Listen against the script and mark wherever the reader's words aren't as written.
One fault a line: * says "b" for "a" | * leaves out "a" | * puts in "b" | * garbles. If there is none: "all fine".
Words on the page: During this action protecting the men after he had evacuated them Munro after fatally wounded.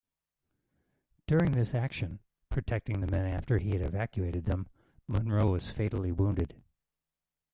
* says "was" for "after"